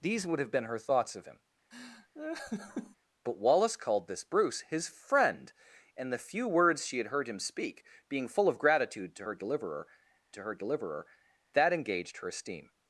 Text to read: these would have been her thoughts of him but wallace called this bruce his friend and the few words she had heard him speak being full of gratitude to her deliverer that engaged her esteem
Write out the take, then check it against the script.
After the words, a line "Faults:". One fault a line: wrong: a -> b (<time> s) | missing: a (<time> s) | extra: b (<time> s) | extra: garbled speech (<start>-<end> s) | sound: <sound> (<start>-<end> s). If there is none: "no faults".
these would have been her thoughts of him but wallace called this bruce his friend and the few words she had heard him speak being full of gratitude to her deliverer to her deliverer that engaged her esteem
Faults:
sound: laugh (1.7-3.0 s)
extra: to her deliverer (10.3 s)